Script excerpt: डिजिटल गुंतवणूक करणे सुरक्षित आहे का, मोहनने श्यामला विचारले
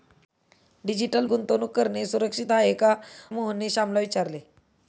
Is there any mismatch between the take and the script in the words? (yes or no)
no